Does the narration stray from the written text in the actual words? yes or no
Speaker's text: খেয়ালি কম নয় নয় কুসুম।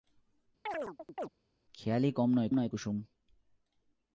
no